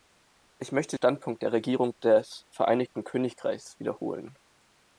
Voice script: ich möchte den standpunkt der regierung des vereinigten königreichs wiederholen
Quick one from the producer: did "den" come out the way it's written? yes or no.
no